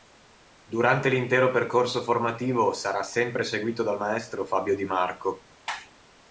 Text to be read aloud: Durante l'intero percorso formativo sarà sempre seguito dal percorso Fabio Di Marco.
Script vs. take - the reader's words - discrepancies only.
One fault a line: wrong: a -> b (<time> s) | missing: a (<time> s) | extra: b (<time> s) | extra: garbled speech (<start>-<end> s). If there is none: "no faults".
wrong: percorso -> maestro (4.0 s)